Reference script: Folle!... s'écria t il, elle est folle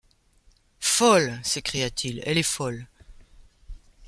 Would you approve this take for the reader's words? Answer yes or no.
yes